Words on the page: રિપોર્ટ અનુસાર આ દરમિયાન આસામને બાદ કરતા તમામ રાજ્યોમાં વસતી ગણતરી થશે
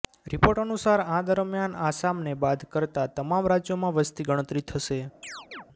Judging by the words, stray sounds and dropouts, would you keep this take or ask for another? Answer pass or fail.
fail